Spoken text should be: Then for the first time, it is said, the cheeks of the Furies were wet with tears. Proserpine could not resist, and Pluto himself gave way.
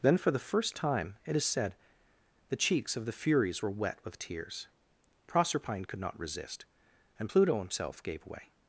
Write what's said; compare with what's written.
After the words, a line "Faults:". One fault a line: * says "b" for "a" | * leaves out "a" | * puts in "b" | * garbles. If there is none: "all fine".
Then for the first time, it is said, the cheeks of the Furies were wet with tears. Proserpine could not resist, and Pluto himself gave way.
Faults:
all fine